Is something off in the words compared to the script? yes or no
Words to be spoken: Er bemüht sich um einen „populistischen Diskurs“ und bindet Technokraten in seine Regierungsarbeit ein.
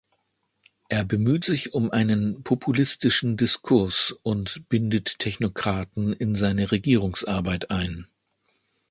no